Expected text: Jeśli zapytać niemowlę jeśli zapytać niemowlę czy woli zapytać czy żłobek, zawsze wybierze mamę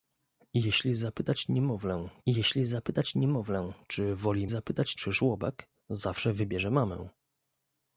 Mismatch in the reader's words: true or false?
false